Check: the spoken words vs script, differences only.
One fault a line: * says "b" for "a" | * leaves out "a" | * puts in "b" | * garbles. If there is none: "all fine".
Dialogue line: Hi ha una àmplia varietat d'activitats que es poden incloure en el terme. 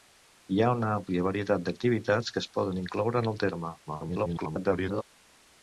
* garbles